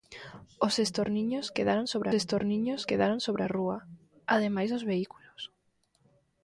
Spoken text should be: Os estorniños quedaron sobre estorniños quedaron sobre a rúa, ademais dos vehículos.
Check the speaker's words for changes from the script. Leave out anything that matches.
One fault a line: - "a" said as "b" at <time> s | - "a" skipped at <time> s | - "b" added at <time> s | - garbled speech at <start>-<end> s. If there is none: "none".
none